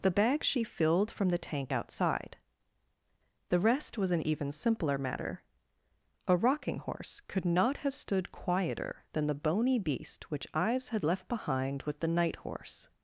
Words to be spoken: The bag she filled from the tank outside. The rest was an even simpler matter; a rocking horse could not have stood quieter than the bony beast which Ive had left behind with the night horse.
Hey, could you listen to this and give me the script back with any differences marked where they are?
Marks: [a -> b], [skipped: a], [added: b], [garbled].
The bag she filled from the tank outside. The rest was an even simpler matter; a rocking horse could not have stood quieter than the bony beast which [Ive -> Ives] had left behind with the night horse.